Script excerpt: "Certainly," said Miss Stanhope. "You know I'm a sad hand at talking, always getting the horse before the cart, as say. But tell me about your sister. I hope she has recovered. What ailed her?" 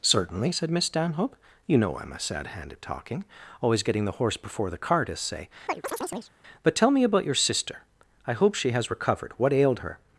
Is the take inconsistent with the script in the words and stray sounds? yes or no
yes